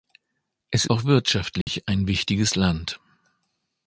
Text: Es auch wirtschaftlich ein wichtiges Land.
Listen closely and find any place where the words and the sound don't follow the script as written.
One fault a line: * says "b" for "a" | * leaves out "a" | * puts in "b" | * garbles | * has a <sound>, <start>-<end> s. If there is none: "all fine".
* has a dropout, 1.6-1.7 s